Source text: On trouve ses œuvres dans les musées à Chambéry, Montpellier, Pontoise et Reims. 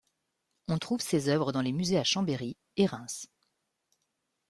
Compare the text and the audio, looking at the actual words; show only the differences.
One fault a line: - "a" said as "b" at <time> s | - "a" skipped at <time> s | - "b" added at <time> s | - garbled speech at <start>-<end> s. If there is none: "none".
- "Montpellier Pontoise" skipped at 2.6 s